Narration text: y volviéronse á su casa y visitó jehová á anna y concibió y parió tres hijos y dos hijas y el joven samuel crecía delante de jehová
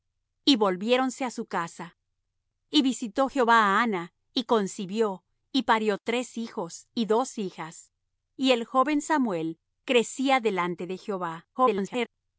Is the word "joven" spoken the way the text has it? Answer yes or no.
yes